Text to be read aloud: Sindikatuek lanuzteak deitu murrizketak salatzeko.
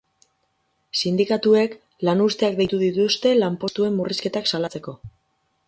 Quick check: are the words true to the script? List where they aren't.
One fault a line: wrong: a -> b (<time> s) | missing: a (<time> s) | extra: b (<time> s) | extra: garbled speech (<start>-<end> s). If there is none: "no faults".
extra: dituzte lanpostuen (2.9 s)